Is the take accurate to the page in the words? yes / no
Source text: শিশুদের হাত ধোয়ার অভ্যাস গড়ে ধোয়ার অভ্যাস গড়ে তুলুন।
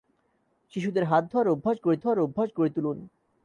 yes